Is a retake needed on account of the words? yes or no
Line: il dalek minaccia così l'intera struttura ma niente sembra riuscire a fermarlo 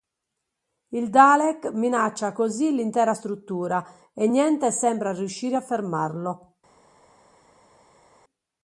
yes